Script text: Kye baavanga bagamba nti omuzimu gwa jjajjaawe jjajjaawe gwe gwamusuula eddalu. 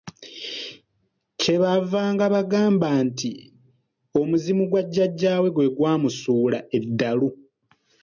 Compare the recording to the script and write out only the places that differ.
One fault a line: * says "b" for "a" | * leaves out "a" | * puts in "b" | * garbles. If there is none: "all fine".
* leaves out "jjajjaawe"